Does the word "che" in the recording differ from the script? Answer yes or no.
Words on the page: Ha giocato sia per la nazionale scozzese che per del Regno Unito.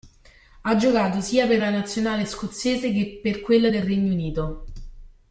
no